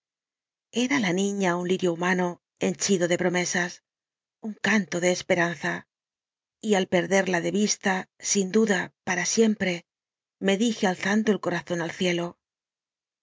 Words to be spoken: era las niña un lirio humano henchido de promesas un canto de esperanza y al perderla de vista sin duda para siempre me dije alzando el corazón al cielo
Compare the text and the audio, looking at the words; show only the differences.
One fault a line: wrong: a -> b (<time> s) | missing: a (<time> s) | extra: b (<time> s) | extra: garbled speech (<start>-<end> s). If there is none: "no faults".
wrong: las -> la (1.0 s)